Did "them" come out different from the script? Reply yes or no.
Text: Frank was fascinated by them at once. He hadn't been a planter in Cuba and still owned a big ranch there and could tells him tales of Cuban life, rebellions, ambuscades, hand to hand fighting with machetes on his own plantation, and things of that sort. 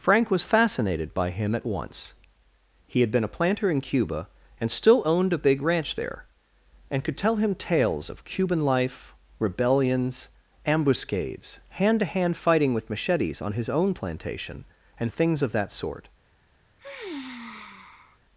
yes